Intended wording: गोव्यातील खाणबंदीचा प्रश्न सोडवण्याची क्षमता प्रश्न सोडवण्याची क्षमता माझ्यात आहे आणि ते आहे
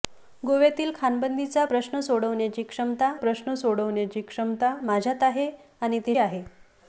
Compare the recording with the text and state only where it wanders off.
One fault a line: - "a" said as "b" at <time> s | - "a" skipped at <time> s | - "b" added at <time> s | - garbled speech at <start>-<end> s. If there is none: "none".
none